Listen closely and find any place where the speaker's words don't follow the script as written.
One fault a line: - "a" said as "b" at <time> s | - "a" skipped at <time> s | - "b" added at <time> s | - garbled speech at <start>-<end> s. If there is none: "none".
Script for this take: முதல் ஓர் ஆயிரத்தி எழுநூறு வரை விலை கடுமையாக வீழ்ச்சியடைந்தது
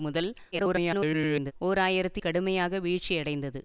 - garbled speech at 0.5-1.5 s
- "எழுநூறு வரை விலை" skipped at 2.2 s